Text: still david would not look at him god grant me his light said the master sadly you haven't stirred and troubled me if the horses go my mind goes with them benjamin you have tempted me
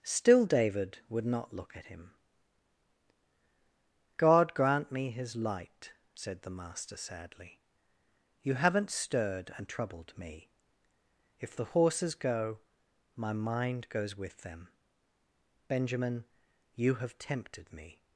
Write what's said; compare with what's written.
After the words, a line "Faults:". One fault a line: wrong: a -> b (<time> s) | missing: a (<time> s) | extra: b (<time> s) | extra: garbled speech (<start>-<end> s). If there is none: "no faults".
still david would not look at him god grant me his light said the master sadly you haven't stirred and troubled me if the horses go my mind goes with them benjamin you have tempted me
Faults:
no faults